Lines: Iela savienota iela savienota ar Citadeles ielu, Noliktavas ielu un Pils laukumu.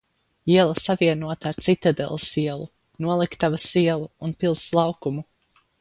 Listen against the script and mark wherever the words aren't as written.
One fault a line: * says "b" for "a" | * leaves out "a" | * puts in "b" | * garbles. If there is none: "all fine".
* leaves out "iela savienota"